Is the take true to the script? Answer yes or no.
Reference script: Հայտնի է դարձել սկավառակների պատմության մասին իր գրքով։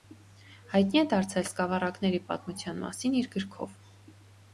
yes